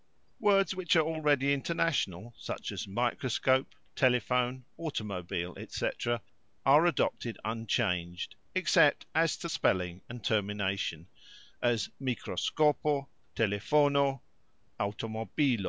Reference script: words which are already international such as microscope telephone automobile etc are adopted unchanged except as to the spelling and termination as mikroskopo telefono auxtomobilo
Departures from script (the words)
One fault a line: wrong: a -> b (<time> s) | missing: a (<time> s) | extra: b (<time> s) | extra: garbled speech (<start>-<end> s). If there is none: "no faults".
missing: the (9.5 s)